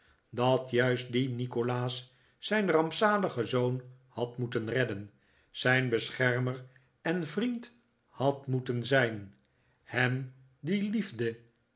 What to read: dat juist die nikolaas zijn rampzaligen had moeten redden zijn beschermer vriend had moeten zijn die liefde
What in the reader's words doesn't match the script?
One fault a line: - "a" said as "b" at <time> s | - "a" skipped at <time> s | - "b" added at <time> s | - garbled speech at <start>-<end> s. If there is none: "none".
- "zoon" added at 3.5 s
- "en" added at 7.0 s
- "hem" added at 9.8 s